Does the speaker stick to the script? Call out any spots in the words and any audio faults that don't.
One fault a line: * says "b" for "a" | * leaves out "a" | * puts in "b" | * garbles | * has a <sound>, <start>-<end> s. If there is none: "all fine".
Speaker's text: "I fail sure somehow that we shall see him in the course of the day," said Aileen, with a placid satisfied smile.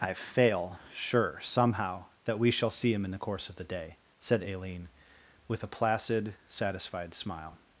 all fine